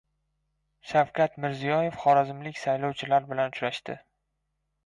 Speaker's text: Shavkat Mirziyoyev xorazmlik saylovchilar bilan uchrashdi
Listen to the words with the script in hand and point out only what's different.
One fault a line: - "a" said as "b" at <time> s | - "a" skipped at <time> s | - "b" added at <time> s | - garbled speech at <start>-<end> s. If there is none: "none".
none